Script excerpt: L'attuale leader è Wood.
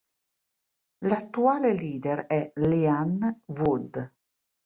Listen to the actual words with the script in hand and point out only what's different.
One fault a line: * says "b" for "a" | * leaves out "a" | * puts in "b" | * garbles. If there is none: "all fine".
* puts in "Leanne"